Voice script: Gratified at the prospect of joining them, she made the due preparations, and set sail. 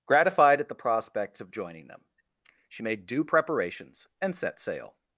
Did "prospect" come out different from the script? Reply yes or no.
yes